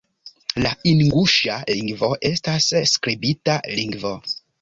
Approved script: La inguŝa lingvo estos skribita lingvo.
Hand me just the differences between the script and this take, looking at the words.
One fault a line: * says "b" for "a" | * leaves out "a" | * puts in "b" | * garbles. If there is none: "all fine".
* says "estas" for "estos"